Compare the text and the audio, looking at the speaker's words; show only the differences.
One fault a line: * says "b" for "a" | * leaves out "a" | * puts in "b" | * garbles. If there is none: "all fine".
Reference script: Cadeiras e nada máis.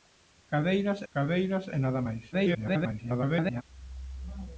* puts in "cadeiras"
* garbles